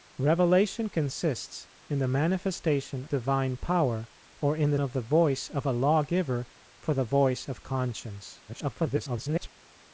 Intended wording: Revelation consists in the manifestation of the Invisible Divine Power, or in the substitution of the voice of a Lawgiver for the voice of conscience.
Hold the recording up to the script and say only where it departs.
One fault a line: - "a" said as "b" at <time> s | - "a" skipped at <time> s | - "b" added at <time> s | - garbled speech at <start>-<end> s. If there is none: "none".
- "of the Invisible" skipped at 3.0 s
- "substitution" skipped at 4.8 s
- garbled speech at 8.5-9.5 s